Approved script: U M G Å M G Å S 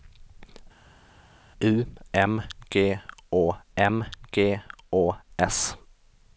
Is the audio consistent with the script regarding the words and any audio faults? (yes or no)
yes